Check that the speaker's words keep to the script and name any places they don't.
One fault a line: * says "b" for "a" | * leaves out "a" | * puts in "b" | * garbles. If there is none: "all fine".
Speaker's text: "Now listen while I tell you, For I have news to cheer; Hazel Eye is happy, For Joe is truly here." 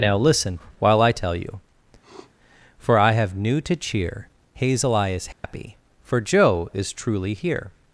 * says "new" for "news"